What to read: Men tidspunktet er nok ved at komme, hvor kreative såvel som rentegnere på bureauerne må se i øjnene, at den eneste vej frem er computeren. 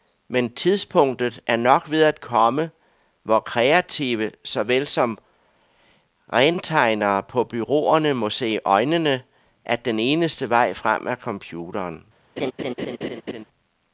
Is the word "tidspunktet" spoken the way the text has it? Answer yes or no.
yes